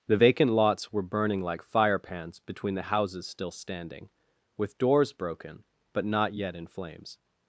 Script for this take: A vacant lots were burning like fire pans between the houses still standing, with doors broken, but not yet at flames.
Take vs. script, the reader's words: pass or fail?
fail